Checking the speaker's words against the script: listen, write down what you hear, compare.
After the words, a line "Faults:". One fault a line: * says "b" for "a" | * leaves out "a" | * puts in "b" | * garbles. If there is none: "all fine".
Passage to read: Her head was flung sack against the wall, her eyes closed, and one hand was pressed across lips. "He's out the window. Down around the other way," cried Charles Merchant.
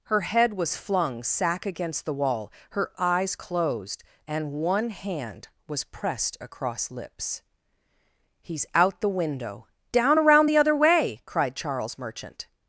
Her head was flung sack against the wall, her eyes closed, and one hand was pressed across lips. "He's out the window. Down around the other way," cried Charles Merchant.
Faults:
all fine